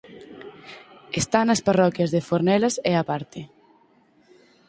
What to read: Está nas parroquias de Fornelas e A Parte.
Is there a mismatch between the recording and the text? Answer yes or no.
no